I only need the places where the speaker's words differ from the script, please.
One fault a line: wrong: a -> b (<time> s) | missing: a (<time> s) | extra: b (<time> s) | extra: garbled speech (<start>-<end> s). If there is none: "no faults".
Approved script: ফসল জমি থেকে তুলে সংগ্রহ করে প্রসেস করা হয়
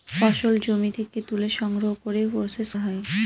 missing: করা (2.7 s)